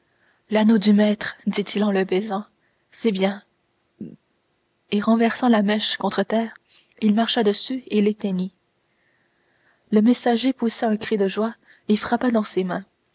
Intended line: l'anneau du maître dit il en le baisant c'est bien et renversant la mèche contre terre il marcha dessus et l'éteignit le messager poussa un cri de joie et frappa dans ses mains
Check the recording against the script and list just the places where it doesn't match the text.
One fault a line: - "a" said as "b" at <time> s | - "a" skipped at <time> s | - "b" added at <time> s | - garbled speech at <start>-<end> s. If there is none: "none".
none